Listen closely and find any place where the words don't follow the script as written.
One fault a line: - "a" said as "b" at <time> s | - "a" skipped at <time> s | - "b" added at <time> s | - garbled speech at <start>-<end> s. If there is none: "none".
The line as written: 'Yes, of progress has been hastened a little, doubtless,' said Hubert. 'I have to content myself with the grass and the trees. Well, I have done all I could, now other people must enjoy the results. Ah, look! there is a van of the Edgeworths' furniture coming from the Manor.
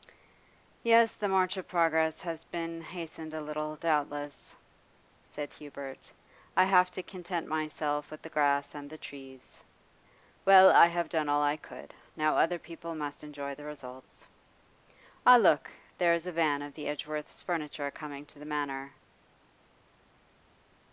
- "the march" added at 1.1 s
- "from" said as "to" at 18.3 s